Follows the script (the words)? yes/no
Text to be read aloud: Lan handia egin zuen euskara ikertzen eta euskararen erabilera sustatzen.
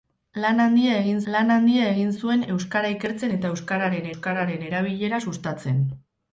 no